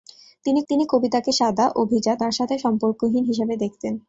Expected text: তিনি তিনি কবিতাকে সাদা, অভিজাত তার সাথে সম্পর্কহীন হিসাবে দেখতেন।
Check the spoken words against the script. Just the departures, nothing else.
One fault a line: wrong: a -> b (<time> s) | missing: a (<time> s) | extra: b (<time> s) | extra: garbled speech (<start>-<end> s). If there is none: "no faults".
no faults